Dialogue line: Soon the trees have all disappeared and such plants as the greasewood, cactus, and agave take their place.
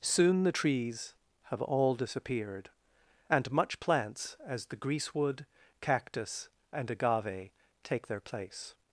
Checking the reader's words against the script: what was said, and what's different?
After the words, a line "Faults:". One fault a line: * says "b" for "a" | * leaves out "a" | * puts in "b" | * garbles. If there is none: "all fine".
Soon the trees have all disappeared and much plants as the greasewood, cactus, and agave take their place.
Faults:
* says "much" for "such"